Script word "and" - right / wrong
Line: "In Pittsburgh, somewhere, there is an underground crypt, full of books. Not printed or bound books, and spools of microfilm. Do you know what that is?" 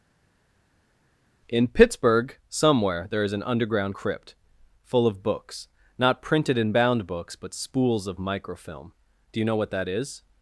wrong